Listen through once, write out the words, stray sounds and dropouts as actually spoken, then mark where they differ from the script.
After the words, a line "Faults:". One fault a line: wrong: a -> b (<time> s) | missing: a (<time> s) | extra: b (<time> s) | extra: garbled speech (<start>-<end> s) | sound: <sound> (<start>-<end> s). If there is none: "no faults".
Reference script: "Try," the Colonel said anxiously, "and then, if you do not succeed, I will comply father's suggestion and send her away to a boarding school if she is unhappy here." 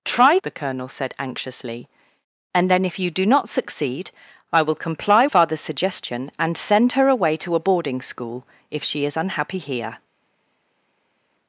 "Try," the Colonel said anxiously, "and then, if you do not succeed, I will comply father's suggestion and send her away to a boarding school if she is unhappy here."
Faults:
no faults